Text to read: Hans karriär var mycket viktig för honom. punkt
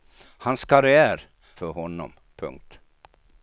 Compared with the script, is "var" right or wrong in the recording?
wrong